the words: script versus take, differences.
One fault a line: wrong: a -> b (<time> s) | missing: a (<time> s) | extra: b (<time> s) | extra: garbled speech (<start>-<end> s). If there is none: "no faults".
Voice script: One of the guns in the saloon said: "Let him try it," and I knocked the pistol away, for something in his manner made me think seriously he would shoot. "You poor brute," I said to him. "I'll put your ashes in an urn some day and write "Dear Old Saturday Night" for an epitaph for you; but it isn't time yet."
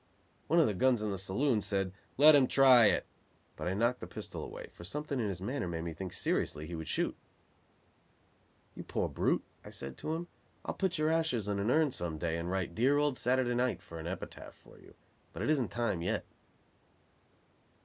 wrong: and -> but (3.5 s)